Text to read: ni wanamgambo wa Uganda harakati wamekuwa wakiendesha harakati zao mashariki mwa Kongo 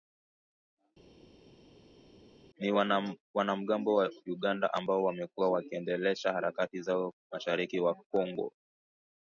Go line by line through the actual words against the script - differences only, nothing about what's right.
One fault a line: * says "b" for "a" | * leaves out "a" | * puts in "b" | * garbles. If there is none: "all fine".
* says "ambao" for "harakati"